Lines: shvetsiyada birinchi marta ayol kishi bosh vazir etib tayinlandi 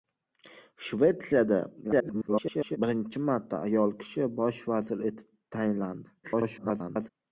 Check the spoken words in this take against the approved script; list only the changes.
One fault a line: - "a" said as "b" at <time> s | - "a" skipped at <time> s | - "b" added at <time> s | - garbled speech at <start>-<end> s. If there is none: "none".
- garbled speech at 1.8-2.8 s
- garbled speech at 6.2-7.1 s